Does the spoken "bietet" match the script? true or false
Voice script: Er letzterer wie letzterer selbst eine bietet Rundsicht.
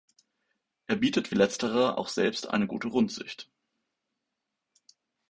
false